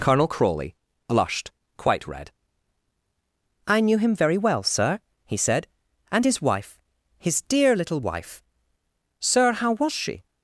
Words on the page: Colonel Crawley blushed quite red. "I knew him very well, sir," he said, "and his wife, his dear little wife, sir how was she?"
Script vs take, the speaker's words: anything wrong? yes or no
no